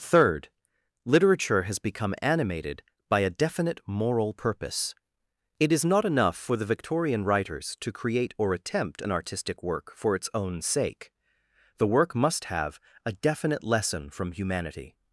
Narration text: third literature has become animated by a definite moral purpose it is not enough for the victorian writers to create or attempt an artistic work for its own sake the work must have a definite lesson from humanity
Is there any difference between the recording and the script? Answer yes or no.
no